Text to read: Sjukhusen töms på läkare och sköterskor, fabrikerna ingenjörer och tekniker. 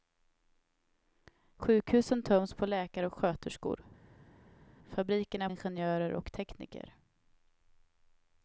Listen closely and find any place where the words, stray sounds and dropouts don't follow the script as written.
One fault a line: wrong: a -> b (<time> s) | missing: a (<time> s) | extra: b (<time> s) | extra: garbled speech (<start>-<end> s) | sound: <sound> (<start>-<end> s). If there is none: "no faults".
no faults